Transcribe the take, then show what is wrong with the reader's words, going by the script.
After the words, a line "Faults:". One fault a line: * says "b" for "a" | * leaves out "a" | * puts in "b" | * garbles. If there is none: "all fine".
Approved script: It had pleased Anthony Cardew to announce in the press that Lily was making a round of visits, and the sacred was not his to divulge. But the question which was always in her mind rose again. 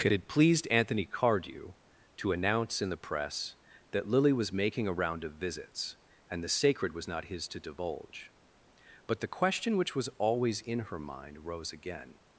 It had pleased Anthony Cardew to announce in the press that Lily was making a round of visits, and the sacred was not his to divulge. But the question which was always in her mind rose again.
Faults:
all fine